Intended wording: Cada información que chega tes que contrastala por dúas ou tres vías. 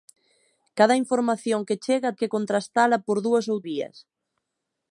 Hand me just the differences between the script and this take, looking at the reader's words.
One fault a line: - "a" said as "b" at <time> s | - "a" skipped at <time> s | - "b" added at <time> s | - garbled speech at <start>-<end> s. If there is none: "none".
- "tes" skipped at 2.2 s
- "tres" skipped at 3.6 s